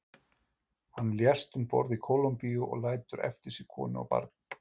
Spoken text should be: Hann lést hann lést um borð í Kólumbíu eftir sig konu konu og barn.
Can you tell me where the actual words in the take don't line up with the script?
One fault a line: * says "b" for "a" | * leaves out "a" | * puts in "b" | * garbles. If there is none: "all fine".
* leaves out "hann lést"
* puts in "og lætur"
* leaves out "konu"